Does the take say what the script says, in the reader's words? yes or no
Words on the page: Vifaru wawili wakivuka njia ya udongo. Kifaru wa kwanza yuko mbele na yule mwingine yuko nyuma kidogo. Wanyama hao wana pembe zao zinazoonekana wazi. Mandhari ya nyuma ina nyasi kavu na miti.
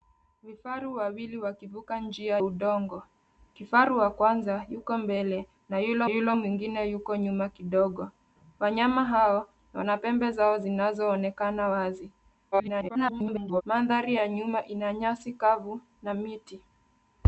no